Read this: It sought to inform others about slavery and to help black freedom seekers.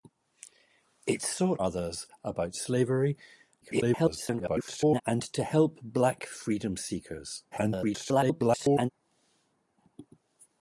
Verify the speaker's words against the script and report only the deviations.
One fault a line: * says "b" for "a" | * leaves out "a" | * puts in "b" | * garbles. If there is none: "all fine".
* leaves out "to inform"
* garbles
* garbles